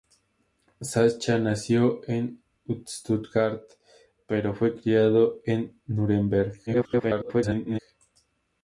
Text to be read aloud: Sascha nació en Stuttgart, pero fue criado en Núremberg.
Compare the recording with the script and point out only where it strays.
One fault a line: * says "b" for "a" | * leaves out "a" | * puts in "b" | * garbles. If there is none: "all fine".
* garbles